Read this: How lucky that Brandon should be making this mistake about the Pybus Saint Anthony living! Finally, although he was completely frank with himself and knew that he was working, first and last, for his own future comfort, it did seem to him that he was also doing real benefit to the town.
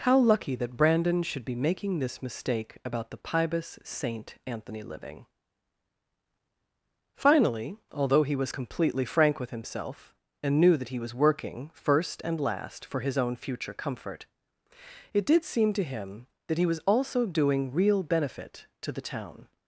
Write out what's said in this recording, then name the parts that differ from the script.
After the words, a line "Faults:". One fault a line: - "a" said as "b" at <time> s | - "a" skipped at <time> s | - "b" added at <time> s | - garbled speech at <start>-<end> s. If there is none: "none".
How lucky that Brandon should be making this mistake about the Pybus Saint Anthony living! Finally, although he was completely frank with himself and knew that he was working, first and last, for his own future comfort, it did seem to him that he was also doing real benefit to the town.
Faults:
none